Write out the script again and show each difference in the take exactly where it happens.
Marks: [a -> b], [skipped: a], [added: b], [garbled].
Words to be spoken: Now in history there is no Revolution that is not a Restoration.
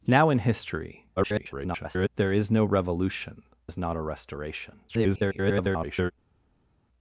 Now in history [garbled] there is no Revolution [skipped: that] is not a Restoration. [garbled]